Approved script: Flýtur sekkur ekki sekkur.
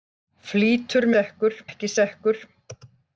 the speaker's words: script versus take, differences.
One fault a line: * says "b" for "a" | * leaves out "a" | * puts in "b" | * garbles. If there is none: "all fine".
all fine